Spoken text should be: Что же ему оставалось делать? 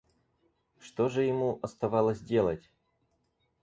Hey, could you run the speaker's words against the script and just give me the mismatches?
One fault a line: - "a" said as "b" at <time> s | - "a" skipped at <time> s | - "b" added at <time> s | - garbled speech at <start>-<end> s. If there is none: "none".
none